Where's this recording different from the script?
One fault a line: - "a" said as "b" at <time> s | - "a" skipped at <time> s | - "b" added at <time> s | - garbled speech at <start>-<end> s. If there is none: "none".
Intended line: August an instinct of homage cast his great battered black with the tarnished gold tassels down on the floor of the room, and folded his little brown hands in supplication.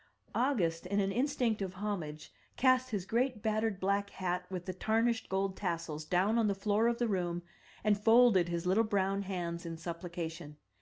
- "in" added at 0.9 s
- "hat" added at 4.1 s